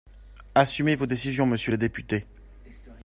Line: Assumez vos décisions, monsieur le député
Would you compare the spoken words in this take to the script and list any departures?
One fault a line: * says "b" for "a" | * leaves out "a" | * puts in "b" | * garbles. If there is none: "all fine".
all fine